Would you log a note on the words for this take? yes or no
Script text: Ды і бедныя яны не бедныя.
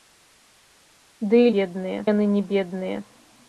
no